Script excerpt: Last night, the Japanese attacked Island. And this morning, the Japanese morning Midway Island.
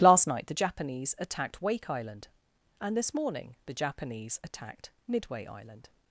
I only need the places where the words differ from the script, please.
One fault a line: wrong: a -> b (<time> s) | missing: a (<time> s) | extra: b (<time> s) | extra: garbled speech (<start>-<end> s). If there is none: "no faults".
extra: Wake (1.6 s)
wrong: morning -> attacked (4.4 s)